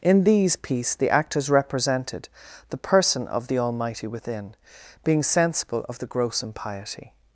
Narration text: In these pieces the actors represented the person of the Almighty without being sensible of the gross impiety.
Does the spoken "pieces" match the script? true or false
false